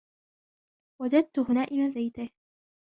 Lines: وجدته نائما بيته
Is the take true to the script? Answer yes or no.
yes